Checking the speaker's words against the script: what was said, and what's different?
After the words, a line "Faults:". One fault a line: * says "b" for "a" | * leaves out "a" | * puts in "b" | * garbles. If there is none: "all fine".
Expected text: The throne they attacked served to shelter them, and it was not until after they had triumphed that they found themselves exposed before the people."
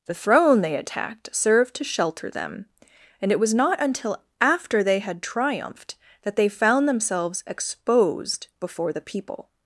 The throne they attacked served to shelter them, and it was not until after they had triumphed that they found themselves exposed before the people."
Faults:
all fine